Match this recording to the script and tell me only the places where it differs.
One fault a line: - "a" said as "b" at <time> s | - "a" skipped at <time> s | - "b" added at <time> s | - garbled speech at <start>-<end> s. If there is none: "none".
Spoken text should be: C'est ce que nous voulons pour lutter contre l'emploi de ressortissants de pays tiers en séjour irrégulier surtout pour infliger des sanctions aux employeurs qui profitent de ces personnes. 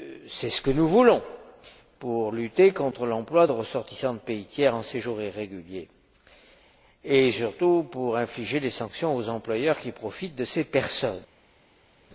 - "et" added at 7.0 s